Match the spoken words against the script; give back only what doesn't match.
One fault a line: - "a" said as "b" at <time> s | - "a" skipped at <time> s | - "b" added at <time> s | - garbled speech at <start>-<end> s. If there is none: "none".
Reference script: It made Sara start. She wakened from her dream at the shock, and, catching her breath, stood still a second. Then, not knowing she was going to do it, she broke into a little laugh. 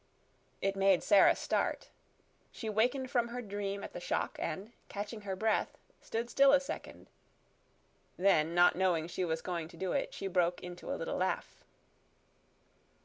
none